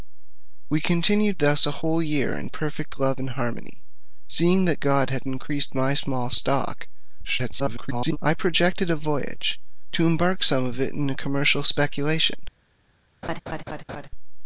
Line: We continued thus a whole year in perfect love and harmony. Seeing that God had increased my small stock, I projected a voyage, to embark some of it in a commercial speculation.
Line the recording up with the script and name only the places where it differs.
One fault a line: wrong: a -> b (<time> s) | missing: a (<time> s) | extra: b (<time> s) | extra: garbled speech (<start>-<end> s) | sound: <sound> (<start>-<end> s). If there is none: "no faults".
extra: garbled speech (7.2-8.2 s)
sound: laugh (13.2-14.1 s)